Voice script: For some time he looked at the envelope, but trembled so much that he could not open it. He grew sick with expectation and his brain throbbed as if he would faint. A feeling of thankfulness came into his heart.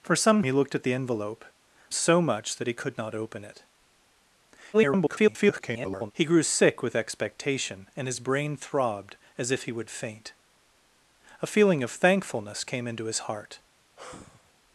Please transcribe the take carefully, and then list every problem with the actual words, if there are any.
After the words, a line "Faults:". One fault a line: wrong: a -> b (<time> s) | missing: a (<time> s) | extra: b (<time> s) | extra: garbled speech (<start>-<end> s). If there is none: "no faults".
For some he looked at the envelope, so much that he could not open it. [garbled] He grew sick with expectation and his brain throbbed as if he would faint. A feeling of thankfulness came into his heart.
Faults:
missing: time (0.4 s)
missing: but trembled (1.4 s)
extra: garbled speech (4.7-6.1 s)